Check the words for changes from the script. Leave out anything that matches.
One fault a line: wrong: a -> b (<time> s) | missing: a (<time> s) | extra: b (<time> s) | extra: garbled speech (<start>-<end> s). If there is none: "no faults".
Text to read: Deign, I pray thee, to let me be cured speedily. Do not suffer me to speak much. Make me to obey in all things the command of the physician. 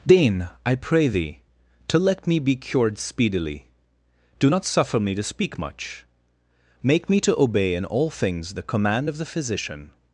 no faults